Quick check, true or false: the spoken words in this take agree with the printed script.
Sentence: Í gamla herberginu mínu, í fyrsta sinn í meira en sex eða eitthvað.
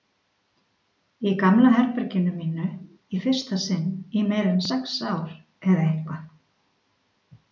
false